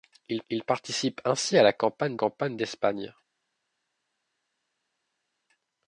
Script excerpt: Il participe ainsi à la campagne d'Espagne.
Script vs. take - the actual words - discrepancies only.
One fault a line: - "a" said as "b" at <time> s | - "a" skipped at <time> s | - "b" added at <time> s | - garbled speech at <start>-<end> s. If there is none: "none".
- "il" added at 0.5 s
- "campagne" added at 2.1 s